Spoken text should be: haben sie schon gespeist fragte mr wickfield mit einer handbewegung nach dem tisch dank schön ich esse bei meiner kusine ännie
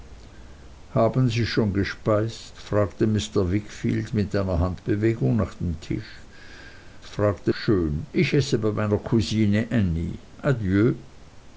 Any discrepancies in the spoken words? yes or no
yes